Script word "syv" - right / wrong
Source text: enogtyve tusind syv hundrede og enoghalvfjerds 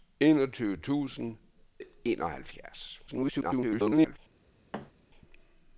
wrong